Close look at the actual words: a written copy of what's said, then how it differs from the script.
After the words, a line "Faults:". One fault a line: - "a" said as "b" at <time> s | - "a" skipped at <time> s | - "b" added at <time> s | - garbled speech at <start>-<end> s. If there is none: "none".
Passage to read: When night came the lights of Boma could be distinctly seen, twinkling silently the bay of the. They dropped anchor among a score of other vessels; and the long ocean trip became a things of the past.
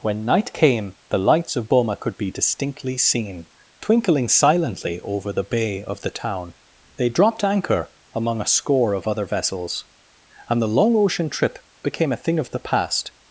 When night came the lights of Boma could be distinctly seen, twinkling silently over the bay of the town. They dropped anchor among a score of other vessels; and the long ocean trip became a thing of the past.
Faults:
- "over" added at 5.0 s
- "town" added at 6.1 s
- "things" said as "thing" at 12.2 s